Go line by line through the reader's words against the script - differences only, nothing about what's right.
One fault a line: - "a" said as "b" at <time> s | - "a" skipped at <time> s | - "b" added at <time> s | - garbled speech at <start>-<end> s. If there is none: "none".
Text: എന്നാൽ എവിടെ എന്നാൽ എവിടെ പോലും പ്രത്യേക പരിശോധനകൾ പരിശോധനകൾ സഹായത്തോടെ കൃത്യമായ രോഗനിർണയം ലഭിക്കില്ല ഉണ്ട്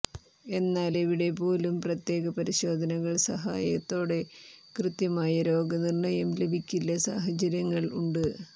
- "എന്നാൽ എവിടെ" skipped at 1.3 s
- "പരിശോധനകൾ" skipped at 3.1 s
- "സാഹചര്യങ്ങൾ" added at 7.1 s